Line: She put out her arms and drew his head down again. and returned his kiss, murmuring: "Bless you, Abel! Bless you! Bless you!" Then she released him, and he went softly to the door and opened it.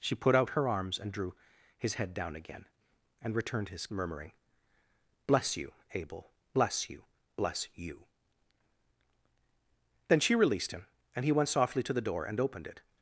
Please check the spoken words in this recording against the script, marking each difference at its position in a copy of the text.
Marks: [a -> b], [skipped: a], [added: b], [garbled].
She put out her arms and drew his head down again. and returned his [skipped: kiss,] murmuring: "Bless you, Abel! Bless you! Bless you!" Then she released him, and he went softly to the door and opened it.